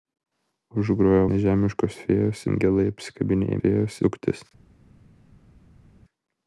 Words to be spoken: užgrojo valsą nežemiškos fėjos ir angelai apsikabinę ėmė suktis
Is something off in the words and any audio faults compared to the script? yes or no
yes